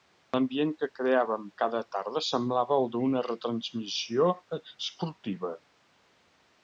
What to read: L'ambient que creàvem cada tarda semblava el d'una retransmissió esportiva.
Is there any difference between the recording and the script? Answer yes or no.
no